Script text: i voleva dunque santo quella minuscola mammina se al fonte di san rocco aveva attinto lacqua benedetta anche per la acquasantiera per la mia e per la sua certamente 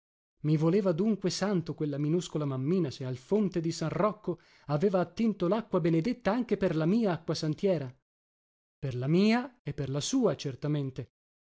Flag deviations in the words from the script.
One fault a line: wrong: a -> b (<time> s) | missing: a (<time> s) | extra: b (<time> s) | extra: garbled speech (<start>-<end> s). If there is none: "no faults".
extra: mia (6.9 s)